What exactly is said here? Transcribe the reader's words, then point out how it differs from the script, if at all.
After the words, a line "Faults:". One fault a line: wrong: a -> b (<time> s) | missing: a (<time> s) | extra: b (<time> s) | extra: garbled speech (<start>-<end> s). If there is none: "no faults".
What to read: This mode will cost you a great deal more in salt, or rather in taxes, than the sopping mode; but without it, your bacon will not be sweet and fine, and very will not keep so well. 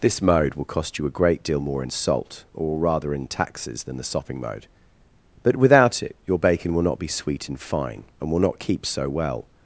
This mode will cost you a great deal more in salt, or rather in taxes, than the sopping mode; but without it, your bacon will not be sweet and fine, and will not keep so well.
Faults:
missing: very (8.3 s)